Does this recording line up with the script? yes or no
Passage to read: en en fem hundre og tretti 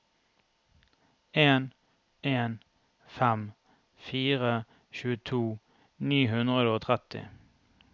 no